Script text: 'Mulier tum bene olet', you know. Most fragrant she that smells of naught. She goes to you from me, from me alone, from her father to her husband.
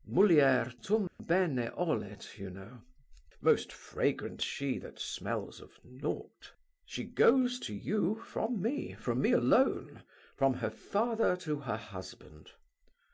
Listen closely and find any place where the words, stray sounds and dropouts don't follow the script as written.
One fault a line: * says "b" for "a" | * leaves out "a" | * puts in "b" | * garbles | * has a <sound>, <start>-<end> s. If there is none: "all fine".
* has a dropout, 1.1-1.2 s